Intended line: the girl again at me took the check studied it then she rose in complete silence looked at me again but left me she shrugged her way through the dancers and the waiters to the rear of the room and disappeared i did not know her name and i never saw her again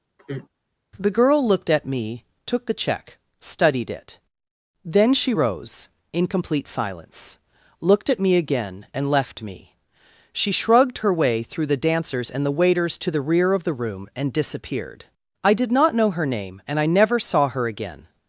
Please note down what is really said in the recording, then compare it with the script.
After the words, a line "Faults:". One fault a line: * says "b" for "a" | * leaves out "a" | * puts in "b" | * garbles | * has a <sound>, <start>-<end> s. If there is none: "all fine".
the girl looked at me took the check studied it then she rose in complete silence looked at me again and left me she shrugged her way through the dancers and the waiters to the rear of the room and disappeared i did not know her name and i never saw her again
Faults:
* has a sigh, 0.2-0.5 s
* says "looked" for "again"
* says "and" for "but"